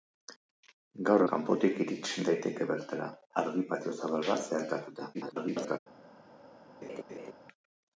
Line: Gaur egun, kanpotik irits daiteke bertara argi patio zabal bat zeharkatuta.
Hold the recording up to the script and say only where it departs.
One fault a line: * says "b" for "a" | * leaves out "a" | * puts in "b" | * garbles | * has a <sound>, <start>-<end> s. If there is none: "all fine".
* leaves out "egun"
* garbles
* has a laugh, 6.8-7.3 s